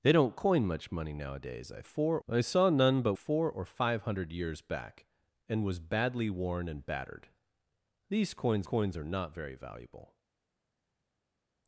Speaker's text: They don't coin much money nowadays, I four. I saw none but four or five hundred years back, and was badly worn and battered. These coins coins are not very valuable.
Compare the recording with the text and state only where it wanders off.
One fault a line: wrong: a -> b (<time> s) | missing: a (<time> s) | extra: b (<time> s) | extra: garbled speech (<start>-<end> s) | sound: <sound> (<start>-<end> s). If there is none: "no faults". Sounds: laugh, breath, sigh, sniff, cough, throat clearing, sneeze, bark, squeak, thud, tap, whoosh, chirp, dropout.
no faults